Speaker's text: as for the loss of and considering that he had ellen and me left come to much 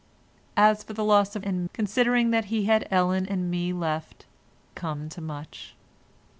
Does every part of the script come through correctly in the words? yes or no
yes